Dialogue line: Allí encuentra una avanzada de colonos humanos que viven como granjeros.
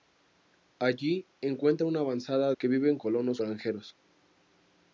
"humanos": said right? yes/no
no